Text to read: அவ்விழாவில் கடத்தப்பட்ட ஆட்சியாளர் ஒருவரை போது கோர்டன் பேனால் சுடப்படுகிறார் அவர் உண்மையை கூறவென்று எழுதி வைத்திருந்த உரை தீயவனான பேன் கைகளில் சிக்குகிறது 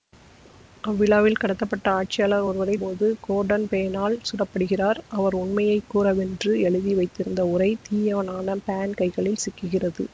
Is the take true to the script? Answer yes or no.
yes